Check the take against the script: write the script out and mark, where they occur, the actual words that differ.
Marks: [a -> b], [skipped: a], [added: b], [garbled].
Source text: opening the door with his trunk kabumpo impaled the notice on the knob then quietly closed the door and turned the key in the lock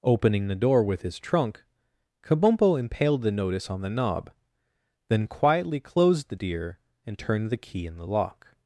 opening the door with his trunk kabumpo impaled the notice on the knob then quietly closed the [door -> deer] and turned the key in the lock